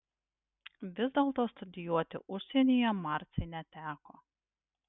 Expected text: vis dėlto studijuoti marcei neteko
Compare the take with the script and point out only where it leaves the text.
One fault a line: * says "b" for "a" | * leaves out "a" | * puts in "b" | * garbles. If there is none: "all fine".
* puts in "užsienyje"